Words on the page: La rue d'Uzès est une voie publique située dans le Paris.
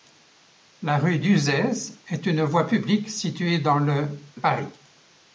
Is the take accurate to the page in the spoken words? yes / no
yes